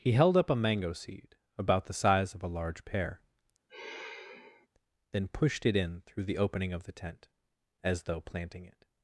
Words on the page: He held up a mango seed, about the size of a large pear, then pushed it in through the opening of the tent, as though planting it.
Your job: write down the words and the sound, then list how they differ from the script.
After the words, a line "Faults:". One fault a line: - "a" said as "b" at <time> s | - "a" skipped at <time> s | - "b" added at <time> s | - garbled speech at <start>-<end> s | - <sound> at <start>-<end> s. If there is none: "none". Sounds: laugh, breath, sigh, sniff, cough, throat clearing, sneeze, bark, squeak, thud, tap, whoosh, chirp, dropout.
He held up a mango seed, about the size of a large pear, then pushed it in through the opening of the tent, as though planting it.
Faults:
- sigh at 3.7-4.7 s